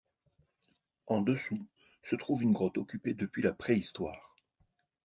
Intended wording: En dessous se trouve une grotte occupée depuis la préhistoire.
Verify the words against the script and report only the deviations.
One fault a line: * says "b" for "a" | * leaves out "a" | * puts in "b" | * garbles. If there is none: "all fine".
all fine